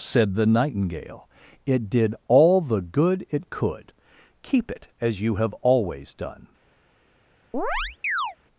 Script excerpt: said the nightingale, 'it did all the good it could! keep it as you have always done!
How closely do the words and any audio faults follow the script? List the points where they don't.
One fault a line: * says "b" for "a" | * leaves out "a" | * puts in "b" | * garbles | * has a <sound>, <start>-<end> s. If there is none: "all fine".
* has a chirp, 7.5-8.4 s